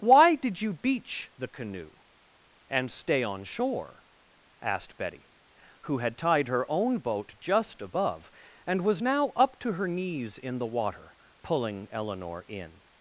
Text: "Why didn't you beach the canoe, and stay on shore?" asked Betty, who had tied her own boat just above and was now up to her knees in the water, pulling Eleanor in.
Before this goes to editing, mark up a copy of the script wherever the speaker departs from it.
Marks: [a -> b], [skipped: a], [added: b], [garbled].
"Why [didn't -> did] you beach the canoe, and stay on shore?" asked Betty, who had tied her own boat just above and was now up to her knees in the water, pulling Eleanor in.